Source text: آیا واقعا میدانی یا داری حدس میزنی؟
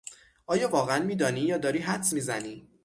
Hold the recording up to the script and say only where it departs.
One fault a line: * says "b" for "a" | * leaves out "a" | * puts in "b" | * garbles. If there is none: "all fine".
all fine